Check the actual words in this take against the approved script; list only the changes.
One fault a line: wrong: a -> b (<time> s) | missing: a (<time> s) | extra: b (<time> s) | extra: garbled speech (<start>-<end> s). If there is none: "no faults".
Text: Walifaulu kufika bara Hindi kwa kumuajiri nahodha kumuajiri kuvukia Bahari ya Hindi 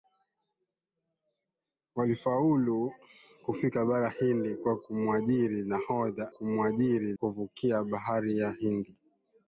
no faults